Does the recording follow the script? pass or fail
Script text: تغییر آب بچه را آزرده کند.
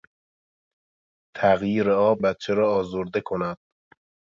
pass